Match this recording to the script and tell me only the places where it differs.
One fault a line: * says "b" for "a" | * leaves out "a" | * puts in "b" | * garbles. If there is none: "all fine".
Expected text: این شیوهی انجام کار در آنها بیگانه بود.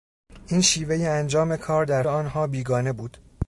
all fine